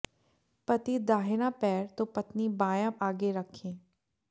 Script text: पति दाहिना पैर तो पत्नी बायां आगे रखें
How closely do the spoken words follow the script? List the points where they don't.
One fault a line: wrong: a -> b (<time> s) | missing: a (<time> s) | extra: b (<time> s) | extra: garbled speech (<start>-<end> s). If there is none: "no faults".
no faults